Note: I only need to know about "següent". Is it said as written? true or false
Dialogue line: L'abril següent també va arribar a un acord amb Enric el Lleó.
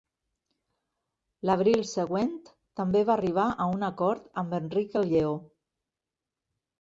true